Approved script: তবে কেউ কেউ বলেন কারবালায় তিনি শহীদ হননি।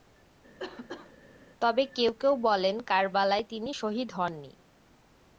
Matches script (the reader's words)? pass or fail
pass